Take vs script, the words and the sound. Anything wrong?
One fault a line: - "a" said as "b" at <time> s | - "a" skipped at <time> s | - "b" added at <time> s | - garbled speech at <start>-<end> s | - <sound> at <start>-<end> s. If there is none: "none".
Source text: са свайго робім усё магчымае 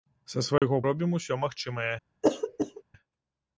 - dropout at 0.6-0.6 s
- throat clearing at 2.2-2.8 s